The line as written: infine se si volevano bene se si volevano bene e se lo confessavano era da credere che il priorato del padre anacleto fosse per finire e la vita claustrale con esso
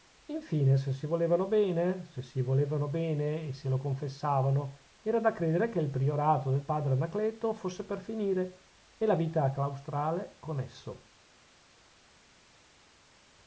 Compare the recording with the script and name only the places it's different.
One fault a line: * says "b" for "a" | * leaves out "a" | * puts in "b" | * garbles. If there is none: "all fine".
all fine